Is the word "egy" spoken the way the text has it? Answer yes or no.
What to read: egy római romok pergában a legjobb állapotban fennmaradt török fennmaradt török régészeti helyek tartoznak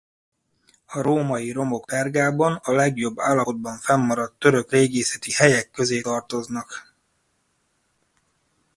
no